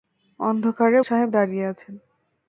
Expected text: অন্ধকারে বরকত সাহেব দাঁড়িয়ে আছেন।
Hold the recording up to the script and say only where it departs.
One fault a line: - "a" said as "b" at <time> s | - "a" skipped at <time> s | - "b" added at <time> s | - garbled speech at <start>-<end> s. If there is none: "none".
- "বরকত" skipped at 1.0 s